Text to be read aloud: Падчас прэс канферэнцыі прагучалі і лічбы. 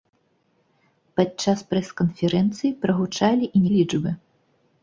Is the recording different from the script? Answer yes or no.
no